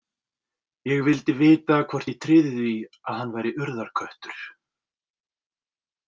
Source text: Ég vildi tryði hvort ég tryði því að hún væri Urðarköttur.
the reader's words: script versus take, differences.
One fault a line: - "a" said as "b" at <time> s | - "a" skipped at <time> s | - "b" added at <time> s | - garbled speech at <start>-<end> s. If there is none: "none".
- "tryði" said as "vita" at 1.4 s
- "hún" said as "hann" at 3.2 s